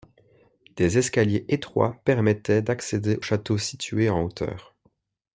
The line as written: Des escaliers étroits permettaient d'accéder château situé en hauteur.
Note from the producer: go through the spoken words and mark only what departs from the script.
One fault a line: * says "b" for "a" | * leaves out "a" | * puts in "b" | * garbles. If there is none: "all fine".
all fine